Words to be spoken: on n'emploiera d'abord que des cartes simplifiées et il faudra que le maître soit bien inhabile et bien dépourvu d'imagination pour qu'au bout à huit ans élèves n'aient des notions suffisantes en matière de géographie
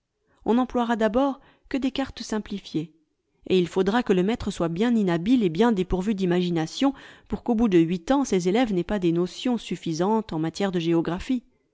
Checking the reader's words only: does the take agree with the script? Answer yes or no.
no